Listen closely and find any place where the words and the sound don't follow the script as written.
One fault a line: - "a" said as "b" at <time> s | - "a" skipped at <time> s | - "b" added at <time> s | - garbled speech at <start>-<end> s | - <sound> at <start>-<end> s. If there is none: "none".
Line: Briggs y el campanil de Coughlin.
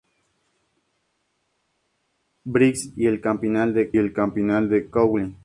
- "el campanil de" added at 4.0 s